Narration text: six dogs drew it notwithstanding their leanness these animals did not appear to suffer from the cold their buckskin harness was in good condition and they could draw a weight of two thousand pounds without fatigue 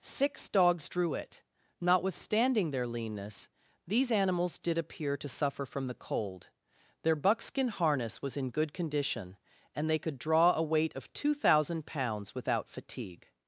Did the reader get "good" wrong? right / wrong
right